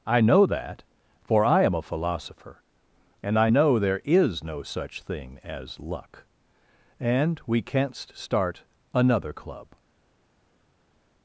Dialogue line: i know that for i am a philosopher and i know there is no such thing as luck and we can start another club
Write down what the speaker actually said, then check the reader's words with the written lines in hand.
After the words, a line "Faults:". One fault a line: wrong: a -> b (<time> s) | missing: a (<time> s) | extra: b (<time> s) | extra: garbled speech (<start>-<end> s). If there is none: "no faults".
i know that for i am a philosopher and i know there is no such thing as luck and we canst start another club
Faults:
wrong: can -> canst (7.6 s)